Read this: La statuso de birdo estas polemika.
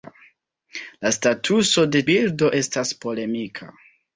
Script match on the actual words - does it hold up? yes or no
yes